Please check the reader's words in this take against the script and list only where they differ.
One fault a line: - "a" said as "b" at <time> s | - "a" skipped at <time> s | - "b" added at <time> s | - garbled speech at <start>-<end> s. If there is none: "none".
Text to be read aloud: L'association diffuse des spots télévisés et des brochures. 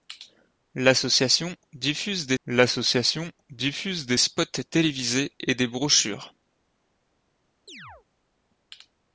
- "l'association diffuse des" added at 2.4 s